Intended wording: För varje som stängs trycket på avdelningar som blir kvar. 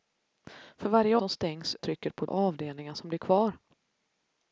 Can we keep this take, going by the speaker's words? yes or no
yes